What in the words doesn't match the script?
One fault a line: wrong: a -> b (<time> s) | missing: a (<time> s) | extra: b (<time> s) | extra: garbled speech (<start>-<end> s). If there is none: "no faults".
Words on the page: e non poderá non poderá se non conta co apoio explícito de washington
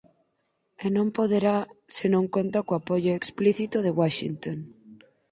missing: non poderá (1.6 s)